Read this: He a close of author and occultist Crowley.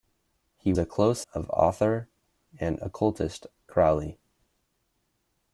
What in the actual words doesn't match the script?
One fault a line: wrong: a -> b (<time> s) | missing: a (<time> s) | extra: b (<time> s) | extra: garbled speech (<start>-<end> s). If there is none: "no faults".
no faults